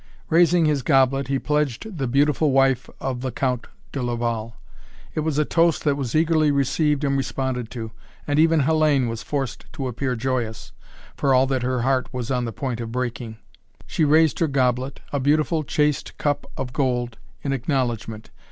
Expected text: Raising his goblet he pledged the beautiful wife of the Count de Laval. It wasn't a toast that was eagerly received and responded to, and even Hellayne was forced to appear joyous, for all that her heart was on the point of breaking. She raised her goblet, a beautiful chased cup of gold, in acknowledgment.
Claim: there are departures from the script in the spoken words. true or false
true